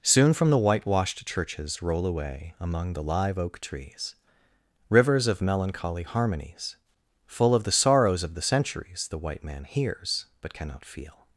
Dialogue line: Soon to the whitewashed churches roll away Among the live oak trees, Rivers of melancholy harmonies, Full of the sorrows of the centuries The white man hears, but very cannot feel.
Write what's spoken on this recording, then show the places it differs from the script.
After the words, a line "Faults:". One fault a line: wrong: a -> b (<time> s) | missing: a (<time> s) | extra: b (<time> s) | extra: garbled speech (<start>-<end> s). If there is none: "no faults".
Soon from the whitewashed churches roll away Among the live oak trees, Rivers of melancholy harmonies, Full of the sorrows of the centuries The white man hears, but cannot feel.
Faults:
wrong: to -> from (0.3 s)
missing: very (10.5 s)